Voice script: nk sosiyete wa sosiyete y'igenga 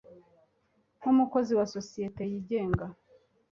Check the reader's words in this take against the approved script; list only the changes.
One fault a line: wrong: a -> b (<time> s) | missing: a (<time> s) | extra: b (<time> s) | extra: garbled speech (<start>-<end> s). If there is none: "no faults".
wrong: sosiyete -> umukozi (1.1 s)